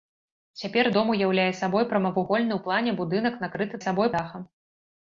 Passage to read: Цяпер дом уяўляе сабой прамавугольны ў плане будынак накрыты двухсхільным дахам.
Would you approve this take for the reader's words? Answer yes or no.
no